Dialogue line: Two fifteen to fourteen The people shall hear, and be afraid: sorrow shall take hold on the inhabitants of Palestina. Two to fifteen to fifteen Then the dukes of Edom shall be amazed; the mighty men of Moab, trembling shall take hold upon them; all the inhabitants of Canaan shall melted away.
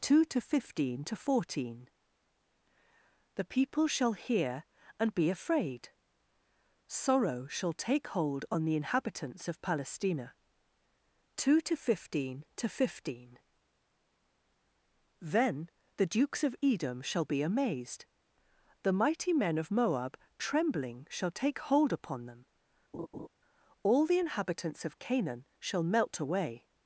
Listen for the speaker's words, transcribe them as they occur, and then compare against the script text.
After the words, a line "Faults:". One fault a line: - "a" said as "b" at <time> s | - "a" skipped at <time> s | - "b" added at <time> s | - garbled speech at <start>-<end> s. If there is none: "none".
Two to fifteen to fourteen The people shall hear, and be afraid: sorrow shall take hold on the inhabitants of Palestina. Two to fifteen to fifteen Then the dukes of Edom shall be amazed; the mighty men of Moab, trembling shall take hold upon them; all the inhabitants of Canaan shall melt away.
Faults:
- "to" added at 0.2 s
- "melted" said as "melt" at 25.8 s